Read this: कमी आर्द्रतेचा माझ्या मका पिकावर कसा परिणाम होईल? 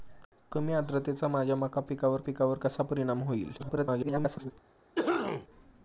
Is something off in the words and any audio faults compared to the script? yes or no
yes